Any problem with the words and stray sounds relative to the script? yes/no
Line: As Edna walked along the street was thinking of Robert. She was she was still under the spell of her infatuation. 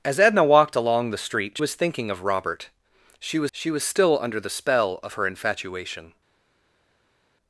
no